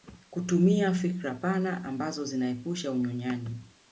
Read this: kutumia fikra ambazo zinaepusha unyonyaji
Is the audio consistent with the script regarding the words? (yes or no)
no